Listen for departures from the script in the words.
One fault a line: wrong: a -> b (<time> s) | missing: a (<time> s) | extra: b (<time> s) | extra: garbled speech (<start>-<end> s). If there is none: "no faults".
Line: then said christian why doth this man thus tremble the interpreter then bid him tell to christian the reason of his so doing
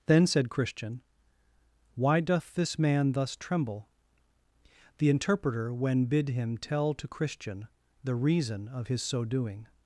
wrong: then -> when (5.7 s)